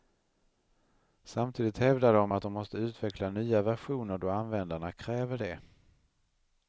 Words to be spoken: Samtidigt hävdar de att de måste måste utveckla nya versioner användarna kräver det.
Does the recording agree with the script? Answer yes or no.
no